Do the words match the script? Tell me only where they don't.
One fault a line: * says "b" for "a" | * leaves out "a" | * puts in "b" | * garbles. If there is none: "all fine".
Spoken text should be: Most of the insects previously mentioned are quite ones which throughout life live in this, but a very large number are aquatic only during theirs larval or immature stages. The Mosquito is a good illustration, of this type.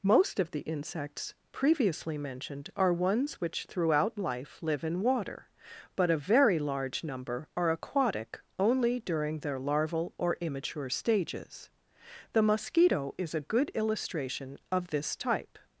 * leaves out "quite"
* says "water" for "this"
* says "their" for "theirs"